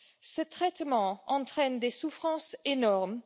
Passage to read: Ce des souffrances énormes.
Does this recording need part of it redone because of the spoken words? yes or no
yes